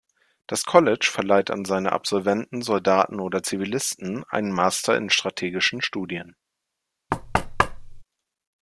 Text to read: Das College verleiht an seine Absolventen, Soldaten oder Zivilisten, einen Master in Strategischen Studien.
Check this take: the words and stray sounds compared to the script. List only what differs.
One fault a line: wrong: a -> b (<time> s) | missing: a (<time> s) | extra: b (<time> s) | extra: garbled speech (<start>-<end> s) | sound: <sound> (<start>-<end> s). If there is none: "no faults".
sound: thud (7.1-8.0 s)